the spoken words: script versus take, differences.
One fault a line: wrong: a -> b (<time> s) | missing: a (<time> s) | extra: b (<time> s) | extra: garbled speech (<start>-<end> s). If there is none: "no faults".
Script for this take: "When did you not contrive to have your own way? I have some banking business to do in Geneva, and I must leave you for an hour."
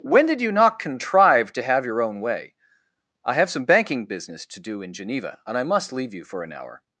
no faults